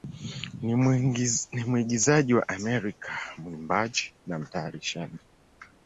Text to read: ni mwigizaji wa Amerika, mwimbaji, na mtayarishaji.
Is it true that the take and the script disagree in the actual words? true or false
false